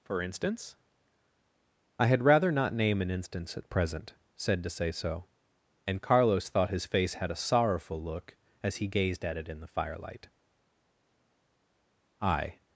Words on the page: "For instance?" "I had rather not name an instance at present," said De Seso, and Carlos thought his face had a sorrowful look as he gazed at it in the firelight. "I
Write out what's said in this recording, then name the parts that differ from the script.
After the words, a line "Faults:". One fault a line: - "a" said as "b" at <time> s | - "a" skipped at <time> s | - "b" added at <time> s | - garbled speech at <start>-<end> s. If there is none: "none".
"For instance?" "I had rather not name an instance at present," said De Seso, and Carlos thought his face had a sorrowful look as he gazed at it in the firelight. "I
Faults:
none